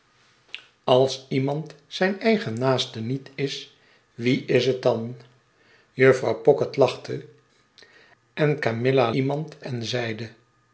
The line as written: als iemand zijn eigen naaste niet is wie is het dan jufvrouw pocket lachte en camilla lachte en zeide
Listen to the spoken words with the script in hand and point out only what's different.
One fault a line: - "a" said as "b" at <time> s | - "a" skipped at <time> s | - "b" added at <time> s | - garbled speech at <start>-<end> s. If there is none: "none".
- "lachte" said as "iemand" at 9.1 s